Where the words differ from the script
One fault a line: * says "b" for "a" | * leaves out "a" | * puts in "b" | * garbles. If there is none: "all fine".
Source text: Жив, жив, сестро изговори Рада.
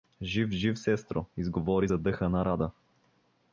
* puts in "задъхана"